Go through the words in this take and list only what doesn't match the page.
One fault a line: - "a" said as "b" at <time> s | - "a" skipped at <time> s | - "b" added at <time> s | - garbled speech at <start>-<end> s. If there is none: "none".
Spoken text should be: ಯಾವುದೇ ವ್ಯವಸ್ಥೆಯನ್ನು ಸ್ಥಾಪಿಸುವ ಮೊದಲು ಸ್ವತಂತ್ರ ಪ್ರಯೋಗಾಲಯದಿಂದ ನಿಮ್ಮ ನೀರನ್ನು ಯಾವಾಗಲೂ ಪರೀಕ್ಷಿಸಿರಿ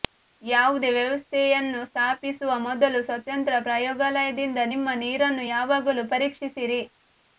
none